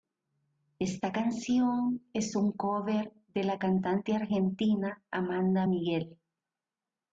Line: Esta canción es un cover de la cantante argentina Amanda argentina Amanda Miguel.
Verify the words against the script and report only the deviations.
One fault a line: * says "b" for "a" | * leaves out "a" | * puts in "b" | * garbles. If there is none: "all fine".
* leaves out "argentina Amanda"